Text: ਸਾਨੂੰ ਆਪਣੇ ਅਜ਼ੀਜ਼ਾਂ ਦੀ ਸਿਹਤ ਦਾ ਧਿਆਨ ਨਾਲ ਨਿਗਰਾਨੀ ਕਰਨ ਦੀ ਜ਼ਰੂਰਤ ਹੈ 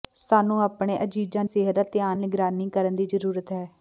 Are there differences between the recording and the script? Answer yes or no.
yes